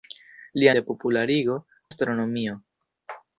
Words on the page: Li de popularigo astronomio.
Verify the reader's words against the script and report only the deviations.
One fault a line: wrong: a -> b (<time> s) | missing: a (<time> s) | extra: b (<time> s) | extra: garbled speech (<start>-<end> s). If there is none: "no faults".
no faults